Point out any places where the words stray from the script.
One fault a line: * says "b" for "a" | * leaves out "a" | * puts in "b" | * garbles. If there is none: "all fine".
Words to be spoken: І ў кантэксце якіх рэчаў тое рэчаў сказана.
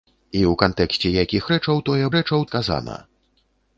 all fine